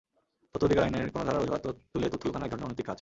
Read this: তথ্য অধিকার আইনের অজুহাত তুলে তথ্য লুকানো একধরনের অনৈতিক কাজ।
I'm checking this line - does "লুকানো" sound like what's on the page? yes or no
yes